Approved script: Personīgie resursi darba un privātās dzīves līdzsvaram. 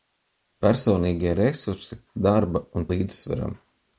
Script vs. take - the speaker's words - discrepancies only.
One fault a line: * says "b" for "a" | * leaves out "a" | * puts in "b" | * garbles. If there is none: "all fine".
* leaves out "privātās dzīves"